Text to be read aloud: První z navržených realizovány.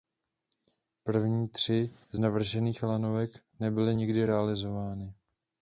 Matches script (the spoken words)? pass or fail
fail